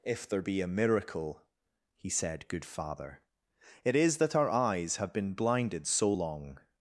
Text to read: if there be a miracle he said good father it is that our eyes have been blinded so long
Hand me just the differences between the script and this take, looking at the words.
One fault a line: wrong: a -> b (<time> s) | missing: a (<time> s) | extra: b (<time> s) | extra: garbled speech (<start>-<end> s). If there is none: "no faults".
no faults